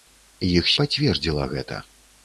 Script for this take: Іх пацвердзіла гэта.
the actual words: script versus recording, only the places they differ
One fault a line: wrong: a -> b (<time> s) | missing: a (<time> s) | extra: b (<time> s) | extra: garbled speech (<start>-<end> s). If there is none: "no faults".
no faults